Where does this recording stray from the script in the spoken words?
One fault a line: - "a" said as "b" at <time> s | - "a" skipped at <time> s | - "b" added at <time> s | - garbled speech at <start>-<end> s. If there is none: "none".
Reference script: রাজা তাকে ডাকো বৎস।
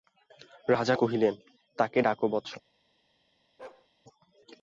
- "কহিলেন" added at 0.9 s